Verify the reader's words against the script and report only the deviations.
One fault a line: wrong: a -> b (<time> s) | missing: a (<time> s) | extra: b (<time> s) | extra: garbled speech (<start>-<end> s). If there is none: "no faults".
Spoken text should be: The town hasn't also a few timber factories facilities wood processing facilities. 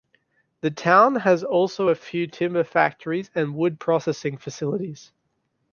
wrong: hasn't -> has (1.2 s)
wrong: facilities -> and (3.3 s)